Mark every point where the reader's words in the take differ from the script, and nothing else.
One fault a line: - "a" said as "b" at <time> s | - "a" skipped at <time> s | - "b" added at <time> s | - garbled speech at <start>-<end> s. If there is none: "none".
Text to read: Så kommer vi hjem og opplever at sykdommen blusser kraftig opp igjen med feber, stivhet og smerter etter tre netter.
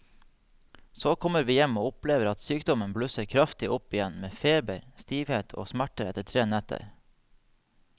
none